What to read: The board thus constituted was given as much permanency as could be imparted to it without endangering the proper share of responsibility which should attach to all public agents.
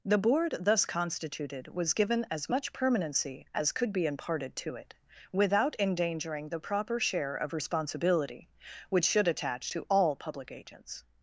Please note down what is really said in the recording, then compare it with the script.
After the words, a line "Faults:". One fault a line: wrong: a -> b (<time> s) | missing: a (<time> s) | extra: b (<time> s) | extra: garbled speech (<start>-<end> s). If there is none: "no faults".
The board thus constituted was given as much permanency as could be imparted to it without endangering the proper share of responsibility which should attach to all public agents.
Faults:
no faults